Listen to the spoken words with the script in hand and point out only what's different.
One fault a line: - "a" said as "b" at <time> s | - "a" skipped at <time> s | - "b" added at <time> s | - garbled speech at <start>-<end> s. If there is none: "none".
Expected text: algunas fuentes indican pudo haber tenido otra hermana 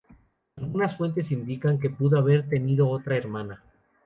- "que" added at 1.8 s